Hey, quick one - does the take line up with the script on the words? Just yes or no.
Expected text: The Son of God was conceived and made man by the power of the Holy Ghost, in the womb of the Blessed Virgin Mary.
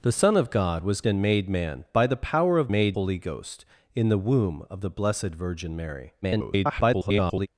no